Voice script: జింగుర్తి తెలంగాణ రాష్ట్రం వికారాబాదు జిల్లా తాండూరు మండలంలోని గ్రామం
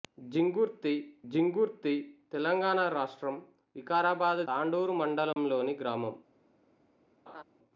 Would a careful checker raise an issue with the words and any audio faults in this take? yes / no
yes